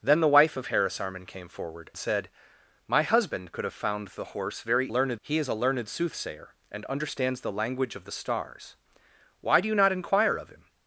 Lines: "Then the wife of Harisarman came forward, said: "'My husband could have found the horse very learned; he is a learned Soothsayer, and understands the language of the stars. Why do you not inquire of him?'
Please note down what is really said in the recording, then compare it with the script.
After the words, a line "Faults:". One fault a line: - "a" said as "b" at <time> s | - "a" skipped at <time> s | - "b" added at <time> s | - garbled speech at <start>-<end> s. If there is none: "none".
"Then the wife of Harisarman came forward, said: "'My husband could have found the horse very learned; he is a learned Soothsayer, and understands the language of the stars. Why do you not inquire of him?'
Faults:
none